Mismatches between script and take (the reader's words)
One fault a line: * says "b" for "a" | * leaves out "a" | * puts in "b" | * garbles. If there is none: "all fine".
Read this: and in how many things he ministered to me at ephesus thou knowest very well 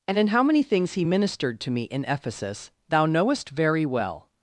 * says "in" for "at"